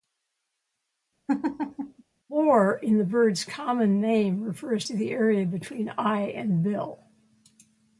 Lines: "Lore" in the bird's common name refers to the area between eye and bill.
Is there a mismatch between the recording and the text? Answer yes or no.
no